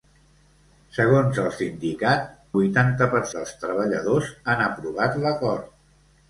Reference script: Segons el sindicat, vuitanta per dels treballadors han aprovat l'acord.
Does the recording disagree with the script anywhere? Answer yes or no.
no